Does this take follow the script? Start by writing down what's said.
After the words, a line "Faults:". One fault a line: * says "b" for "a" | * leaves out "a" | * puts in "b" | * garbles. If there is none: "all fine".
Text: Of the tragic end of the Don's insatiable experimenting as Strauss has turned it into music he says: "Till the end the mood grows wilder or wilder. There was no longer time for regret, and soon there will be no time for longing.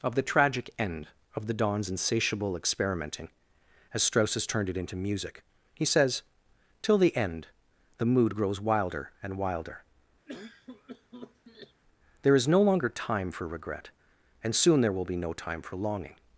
Of the tragic end of the Don's insatiable experimenting as Strauss has turned it into music he says: "Till the end the mood grows wilder and wilder. There is no longer time for regret, and soon there will be no time for longing.
Faults:
* says "and" for "or"
* says "is" for "was"